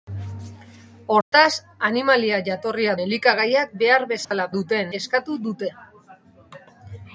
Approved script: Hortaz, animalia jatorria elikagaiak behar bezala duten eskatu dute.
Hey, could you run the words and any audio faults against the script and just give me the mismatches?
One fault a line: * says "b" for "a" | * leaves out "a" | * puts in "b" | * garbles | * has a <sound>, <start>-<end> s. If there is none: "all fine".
* has a dropout, 1.2-1.3 s
* has a dropout, 4.2-4.3 s